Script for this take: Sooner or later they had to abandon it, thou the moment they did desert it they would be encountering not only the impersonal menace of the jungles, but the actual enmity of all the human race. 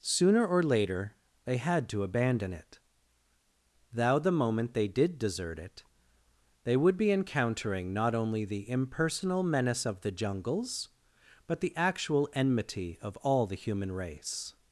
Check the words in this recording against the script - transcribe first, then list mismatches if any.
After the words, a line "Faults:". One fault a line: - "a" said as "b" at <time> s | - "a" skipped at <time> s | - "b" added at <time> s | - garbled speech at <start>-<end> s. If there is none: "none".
Sooner or later they had to abandon it, thou the moment they did desert it they would be encountering not only the impersonal menace of the jungles, but the actual enmity of all the human race.
Faults:
none